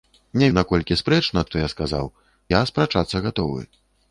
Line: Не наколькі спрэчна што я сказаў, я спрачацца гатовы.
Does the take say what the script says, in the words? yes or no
yes